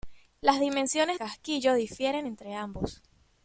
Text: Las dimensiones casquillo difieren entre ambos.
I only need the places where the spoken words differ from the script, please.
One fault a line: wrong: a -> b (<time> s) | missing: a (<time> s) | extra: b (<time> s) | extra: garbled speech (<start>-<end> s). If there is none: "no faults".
no faults